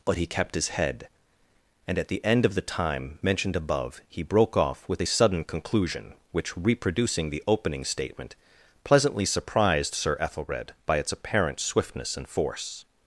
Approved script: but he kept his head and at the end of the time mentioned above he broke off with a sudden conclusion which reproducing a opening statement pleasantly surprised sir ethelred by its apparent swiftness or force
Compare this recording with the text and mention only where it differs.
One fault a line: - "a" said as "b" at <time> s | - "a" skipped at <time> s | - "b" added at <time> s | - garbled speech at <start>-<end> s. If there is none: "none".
- "a" said as "the" at 7.3 s
- "or" said as "and" at 12.2 s